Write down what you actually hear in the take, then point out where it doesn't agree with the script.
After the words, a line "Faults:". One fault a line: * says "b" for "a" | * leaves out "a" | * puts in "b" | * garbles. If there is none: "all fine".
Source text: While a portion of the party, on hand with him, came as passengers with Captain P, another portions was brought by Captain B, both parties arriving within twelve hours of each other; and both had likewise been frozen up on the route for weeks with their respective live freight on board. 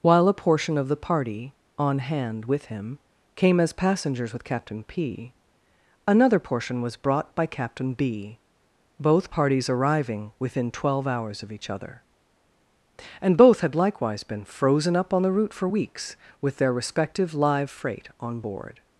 While a portion of the party, on hand with him, came as passengers with Captain P, another portion was brought by Captain B, both parties arriving within twelve hours of each other; and both had likewise been frozen up on the route for weeks with their respective live freight on board.
Faults:
* says "portion" for "portions"